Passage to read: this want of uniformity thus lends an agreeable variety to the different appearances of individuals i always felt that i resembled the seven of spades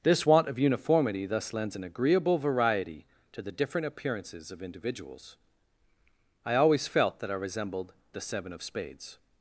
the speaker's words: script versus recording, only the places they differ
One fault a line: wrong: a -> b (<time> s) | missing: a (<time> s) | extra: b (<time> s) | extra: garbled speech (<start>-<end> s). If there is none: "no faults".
no faults